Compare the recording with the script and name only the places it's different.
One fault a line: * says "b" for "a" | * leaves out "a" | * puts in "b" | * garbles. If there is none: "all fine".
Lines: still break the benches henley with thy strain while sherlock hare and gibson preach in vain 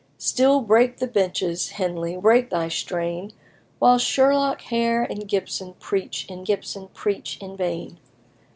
* says "break" for "with"
* puts in "gibson preach in"